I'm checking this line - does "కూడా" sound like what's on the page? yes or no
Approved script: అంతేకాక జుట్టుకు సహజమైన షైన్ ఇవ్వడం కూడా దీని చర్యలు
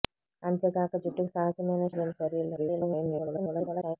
no